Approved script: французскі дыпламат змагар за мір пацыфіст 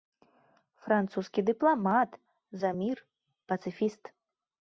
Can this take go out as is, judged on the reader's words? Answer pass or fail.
fail